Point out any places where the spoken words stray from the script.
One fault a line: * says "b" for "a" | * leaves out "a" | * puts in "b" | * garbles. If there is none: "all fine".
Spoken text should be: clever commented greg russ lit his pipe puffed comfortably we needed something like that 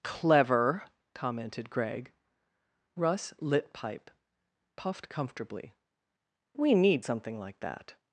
* leaves out "his"
* says "need" for "needed"